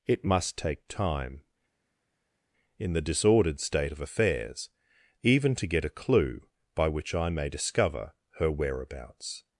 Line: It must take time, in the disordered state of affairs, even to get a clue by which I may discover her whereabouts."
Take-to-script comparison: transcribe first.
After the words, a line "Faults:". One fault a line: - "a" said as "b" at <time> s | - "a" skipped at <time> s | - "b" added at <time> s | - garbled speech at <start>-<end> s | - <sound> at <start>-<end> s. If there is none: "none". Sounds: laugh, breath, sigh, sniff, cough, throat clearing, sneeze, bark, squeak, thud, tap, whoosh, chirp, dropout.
It must take time, in the disordered state of affairs, even to get a clue by which I may discover her whereabouts."
Faults:
none